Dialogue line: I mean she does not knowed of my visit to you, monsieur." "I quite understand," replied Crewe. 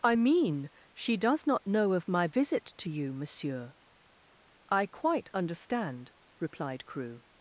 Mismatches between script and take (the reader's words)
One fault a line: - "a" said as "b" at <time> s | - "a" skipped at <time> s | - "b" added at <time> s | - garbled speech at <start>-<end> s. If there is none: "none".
- "knowed" said as "know" at 1.7 s